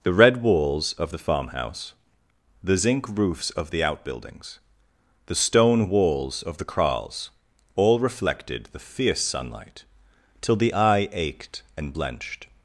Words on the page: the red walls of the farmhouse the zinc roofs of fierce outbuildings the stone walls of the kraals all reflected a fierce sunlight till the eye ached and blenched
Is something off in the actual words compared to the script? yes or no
yes